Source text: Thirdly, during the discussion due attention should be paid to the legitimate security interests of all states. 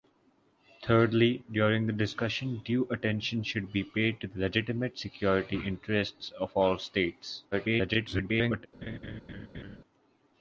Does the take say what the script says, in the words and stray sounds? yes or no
no